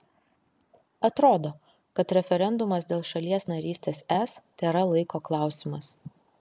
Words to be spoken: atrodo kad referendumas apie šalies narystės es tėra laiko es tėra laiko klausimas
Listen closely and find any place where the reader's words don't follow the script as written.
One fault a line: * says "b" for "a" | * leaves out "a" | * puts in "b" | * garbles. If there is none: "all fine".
* says "dėl" for "apie"
* leaves out "es tėra laiko"